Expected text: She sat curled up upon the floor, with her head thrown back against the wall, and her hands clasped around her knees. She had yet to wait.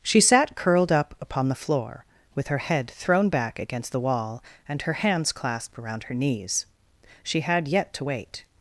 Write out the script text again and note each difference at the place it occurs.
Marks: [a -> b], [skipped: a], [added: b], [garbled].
She sat curled up upon the floor, with her head thrown back against the wall, and her hands clasped around her knees. She had yet to wait.